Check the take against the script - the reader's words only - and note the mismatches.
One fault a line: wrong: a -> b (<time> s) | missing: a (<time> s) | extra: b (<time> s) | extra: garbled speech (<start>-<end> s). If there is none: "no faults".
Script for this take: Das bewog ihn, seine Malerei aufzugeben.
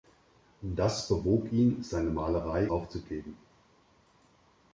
no faults